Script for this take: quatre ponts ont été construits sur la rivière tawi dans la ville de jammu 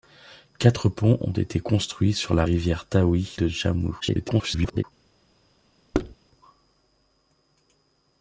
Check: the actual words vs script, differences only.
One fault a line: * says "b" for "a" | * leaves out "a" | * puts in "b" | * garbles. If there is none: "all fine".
* leaves out "dans la ville"
* garbles